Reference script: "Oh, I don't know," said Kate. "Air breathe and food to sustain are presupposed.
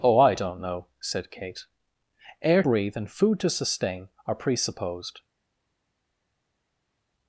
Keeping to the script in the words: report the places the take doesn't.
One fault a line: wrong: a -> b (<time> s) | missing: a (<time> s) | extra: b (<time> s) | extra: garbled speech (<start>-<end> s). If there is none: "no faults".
no faults